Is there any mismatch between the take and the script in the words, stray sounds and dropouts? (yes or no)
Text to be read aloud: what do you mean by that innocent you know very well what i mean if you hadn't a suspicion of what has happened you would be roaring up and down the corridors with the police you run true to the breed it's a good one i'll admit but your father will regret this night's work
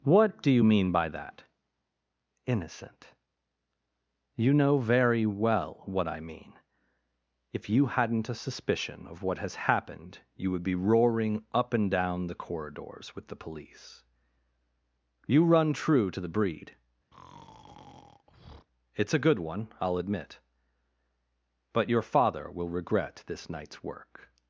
yes